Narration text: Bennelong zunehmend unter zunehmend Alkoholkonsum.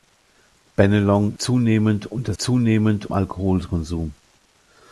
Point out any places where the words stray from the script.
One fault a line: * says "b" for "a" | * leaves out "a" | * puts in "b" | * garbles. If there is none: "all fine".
all fine